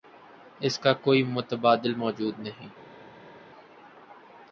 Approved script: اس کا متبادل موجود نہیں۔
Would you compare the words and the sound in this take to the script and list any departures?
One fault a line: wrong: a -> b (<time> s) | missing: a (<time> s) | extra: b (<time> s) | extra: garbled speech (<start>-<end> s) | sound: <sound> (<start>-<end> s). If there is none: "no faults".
extra: کوئی (1.0 s)